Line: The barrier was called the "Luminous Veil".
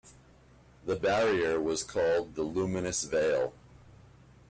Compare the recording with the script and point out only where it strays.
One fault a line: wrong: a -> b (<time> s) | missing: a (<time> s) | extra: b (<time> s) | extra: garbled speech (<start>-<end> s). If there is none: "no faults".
no faults